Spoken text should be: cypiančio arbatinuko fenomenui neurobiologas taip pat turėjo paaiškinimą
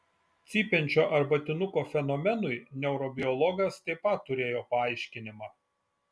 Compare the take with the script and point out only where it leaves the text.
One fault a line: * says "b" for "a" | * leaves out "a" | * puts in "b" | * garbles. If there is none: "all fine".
all fine